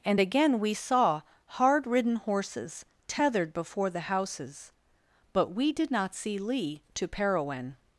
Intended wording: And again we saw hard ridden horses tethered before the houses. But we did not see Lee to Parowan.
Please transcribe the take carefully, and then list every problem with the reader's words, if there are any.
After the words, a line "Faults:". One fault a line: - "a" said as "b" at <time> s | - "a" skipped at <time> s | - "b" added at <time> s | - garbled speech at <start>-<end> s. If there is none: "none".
And again we saw hard ridden horses tethered before the houses. But we did not see Lee to Parowan.
Faults:
none